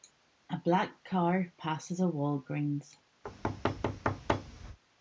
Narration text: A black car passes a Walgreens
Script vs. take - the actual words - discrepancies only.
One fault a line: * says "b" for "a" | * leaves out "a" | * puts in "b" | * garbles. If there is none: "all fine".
all fine